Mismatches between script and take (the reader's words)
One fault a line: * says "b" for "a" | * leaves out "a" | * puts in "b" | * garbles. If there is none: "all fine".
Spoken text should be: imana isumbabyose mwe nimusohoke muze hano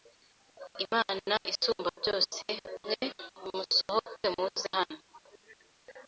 all fine